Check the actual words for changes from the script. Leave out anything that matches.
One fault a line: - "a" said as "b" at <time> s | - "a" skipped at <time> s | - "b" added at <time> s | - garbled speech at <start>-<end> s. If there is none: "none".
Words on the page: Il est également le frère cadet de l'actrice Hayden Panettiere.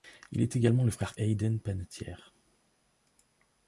- "cadet de l'actrice" skipped at 1.1 s